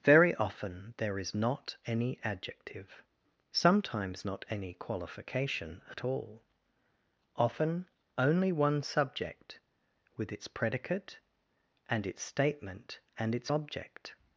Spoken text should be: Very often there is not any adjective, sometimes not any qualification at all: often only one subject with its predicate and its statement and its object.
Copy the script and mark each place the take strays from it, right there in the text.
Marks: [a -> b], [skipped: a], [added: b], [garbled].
Very often there is not any adjective, sometimes not any qualification at all: often only one subject with its predicate and its statement and its object.